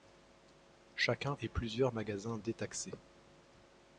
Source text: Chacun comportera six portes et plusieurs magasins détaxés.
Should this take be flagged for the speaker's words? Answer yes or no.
yes